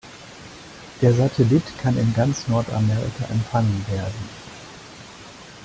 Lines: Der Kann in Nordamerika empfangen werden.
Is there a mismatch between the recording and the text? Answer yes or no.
yes